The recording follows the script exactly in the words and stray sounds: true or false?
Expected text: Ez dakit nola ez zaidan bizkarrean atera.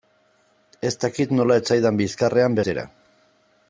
true